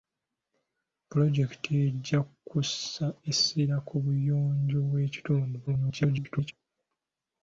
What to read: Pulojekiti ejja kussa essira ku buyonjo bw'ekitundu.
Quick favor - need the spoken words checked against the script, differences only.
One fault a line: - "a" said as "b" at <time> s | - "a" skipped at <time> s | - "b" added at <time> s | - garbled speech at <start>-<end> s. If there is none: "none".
- garbled speech at 5.7-6.5 s